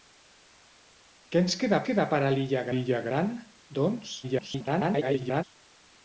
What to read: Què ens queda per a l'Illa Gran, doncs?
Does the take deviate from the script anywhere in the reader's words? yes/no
yes